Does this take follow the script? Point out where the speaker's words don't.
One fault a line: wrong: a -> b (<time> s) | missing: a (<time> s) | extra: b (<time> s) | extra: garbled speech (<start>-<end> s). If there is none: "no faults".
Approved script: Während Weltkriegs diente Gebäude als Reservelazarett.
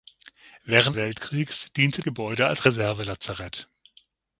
no faults